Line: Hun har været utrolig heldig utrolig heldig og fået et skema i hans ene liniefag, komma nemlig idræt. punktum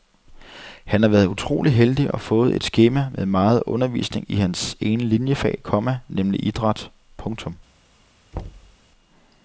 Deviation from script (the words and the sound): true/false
true